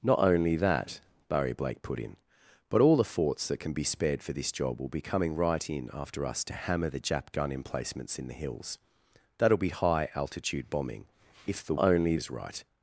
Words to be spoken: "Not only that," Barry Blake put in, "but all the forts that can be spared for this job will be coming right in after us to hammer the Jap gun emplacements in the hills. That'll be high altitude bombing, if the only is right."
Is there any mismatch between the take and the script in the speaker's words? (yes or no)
no